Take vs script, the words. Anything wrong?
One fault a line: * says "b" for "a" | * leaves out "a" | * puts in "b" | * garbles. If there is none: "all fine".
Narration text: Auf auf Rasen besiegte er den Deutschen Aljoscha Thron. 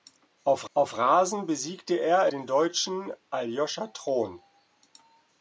all fine